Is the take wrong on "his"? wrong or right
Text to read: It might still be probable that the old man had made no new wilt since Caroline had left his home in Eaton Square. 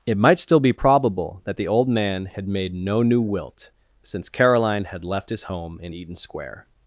right